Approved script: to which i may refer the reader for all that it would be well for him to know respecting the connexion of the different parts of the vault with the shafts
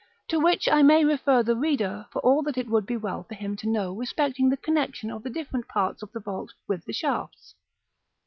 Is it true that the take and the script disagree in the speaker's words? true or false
false